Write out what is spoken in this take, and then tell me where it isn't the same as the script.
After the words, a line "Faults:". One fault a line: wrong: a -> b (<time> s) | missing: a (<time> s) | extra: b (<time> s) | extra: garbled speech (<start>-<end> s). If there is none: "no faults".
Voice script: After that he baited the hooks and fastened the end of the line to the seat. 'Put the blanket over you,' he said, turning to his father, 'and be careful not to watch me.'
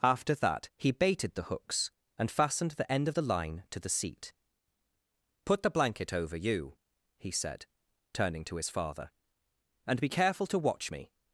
After that he baited the hooks and fastened the end of the line to the seat. 'Put the blanket over you,' he said, turning to his father, 'and be careful to watch me.'
Faults:
missing: not (10.5 s)